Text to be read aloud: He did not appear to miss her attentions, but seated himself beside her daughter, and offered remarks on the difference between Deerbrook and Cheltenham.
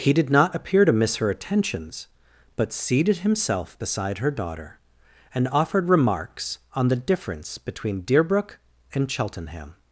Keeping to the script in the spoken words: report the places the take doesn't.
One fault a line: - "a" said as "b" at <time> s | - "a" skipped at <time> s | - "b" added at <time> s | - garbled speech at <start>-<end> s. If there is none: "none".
none